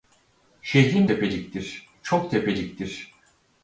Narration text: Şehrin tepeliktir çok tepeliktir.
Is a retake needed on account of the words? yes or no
no